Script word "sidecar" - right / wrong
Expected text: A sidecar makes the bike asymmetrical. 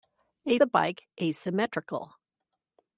wrong